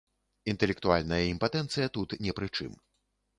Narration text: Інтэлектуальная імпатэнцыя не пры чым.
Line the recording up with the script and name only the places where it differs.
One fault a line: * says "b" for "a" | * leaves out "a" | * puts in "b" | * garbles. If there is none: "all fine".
* puts in "тут"